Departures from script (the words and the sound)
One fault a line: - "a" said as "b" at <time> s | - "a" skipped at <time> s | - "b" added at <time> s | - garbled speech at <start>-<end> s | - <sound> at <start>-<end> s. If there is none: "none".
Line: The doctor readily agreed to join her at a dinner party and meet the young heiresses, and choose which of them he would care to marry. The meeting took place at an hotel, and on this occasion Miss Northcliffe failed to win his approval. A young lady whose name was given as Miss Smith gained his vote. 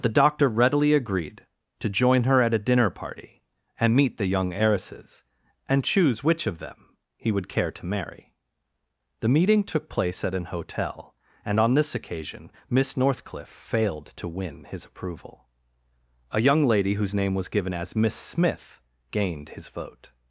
none